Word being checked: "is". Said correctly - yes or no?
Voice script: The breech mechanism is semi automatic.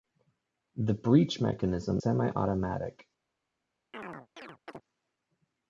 no